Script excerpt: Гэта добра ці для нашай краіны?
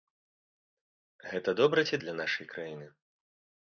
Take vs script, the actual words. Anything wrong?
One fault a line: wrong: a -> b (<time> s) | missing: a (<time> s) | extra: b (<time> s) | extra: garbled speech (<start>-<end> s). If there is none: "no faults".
no faults